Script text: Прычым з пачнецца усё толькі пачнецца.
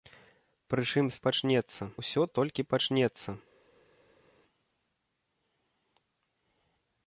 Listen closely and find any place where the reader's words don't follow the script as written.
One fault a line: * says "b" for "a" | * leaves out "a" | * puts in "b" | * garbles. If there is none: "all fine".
all fine